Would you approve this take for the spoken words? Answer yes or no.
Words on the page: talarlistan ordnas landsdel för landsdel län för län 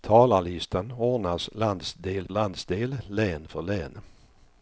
no